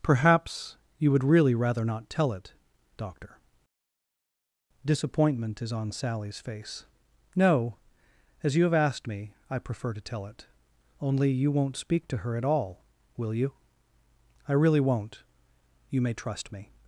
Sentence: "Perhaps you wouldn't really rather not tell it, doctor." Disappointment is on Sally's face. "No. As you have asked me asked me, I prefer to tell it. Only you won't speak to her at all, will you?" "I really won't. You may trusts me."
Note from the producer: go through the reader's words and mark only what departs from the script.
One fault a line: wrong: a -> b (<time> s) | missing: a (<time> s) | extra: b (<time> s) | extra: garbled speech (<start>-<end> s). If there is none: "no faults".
wrong: wouldn't -> would (1.1 s)
missing: asked me (9.3 s)
wrong: trusts -> trust (16.1 s)